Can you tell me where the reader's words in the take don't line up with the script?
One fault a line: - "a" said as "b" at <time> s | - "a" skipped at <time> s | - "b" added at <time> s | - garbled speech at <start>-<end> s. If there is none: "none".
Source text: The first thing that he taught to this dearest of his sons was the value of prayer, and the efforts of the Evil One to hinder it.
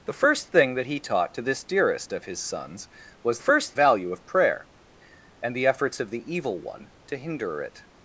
- "the" said as "first" at 3.4 s